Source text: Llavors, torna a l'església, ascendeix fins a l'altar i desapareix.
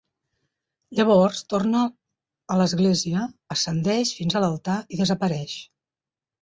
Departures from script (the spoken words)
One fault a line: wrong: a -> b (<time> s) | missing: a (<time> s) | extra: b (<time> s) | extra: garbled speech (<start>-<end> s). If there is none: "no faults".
no faults